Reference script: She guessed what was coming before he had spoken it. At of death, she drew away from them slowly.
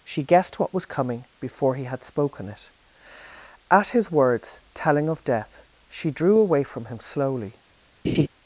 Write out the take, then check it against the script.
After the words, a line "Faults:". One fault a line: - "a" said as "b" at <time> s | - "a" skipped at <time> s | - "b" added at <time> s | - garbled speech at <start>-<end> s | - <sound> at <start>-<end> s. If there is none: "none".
She guessed what was coming before he had spoken it. At his words, telling of death, she drew away from him slowly.
Faults:
- "his words telling" added at 3.9 s
- "them" said as "him" at 6.9 s
- laugh at 8.0-8.3 s